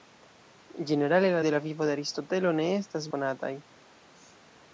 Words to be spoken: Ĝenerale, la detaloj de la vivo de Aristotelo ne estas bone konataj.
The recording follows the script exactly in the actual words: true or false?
false